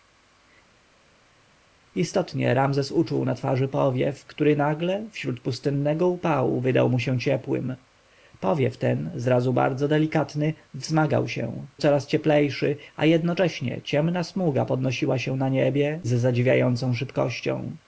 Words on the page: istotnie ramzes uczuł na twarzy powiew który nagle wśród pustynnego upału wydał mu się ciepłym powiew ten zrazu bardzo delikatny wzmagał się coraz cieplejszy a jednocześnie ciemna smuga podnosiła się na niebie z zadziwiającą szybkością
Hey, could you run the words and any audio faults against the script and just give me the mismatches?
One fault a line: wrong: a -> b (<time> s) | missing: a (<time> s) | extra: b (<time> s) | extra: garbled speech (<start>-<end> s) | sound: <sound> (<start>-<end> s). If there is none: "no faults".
no faults